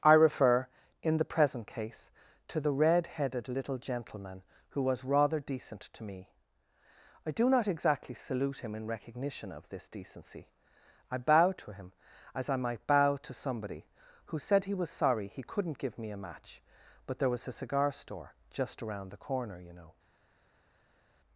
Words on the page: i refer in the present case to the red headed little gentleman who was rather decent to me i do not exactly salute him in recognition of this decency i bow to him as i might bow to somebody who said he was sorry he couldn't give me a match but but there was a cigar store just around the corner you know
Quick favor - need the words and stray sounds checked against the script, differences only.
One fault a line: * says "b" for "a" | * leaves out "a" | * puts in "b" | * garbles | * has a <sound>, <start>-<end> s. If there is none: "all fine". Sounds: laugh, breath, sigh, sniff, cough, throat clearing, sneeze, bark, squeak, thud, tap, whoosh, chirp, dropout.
* leaves out "but"